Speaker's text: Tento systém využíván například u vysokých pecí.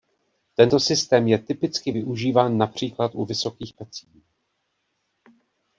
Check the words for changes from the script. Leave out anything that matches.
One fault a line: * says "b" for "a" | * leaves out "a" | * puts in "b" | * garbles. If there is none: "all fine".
* puts in "je typicky"